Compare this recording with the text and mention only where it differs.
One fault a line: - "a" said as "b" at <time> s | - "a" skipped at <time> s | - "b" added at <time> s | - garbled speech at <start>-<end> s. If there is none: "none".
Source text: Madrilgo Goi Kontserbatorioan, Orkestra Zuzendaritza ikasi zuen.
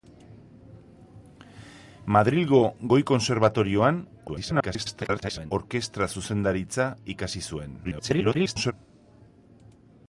- garbled speech at 4.3-5.5 s
- garbled speech at 7.8-8.7 s